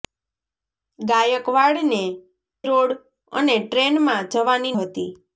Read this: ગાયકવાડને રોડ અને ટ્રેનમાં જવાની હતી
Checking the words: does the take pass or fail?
pass